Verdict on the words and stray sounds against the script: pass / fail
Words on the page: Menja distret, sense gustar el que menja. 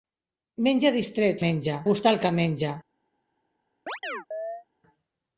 fail